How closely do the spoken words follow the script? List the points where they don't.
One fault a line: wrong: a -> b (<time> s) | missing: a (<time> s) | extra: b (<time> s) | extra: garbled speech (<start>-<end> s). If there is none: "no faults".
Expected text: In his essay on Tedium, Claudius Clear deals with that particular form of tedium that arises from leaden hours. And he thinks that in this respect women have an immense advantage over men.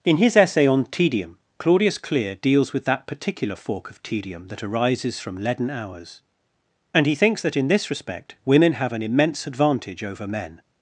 wrong: form -> fork (3.5 s)